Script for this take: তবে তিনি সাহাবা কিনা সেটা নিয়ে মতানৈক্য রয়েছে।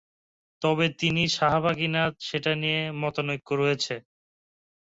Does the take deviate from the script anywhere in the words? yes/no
no